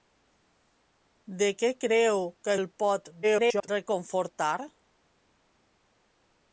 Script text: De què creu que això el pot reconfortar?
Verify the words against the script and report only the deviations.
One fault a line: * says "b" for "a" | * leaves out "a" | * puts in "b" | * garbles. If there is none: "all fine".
* leaves out "això"
* garbles